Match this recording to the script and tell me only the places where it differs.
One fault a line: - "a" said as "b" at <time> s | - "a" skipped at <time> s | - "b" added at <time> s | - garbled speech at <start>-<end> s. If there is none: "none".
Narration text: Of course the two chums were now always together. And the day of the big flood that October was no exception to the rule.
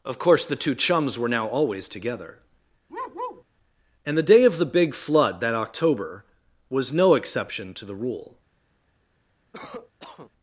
none